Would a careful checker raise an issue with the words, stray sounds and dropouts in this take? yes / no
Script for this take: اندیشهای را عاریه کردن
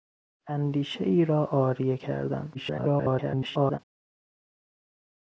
yes